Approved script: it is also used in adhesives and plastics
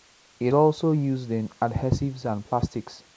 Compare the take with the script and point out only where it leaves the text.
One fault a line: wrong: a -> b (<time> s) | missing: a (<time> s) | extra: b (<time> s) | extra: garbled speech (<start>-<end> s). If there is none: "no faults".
missing: is (0.5 s)